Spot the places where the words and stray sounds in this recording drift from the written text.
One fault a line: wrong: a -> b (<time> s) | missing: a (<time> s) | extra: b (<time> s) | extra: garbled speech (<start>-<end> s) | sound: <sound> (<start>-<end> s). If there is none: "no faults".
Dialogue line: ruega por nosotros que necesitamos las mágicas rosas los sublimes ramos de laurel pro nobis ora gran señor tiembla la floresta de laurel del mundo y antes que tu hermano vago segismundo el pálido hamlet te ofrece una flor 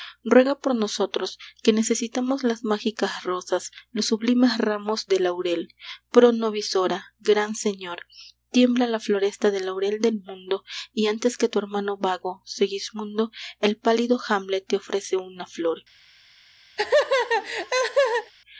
sound: laugh (16.8-18.3 s)